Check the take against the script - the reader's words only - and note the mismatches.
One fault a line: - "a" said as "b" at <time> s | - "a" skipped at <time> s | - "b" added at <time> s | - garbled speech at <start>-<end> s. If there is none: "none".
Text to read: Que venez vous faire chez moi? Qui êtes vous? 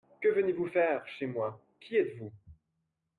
none